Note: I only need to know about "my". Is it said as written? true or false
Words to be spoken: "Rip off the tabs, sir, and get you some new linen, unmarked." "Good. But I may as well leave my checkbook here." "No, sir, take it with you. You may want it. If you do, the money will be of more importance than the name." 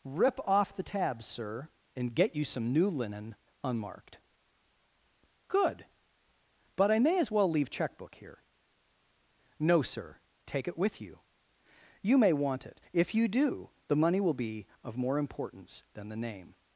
false